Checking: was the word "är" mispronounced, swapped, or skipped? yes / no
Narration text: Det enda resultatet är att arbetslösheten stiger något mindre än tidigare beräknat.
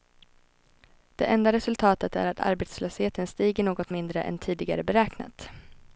no